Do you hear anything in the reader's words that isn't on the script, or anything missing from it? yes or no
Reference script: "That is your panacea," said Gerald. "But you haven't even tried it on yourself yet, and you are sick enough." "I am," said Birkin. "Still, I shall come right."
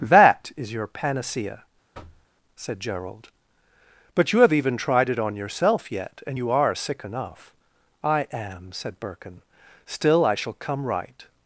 yes